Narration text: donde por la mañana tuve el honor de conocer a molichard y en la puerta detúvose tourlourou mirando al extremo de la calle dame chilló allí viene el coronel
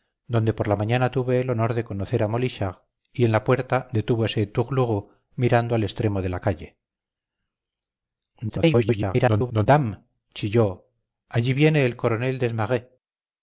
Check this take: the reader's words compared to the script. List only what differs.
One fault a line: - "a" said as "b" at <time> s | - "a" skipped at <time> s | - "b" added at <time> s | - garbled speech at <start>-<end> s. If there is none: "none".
- garbled speech at 8.5-9.7 s